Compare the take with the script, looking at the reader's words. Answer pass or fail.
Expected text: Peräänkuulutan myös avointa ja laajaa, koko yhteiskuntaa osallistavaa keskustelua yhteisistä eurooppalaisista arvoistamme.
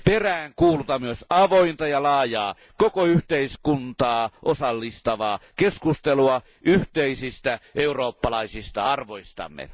pass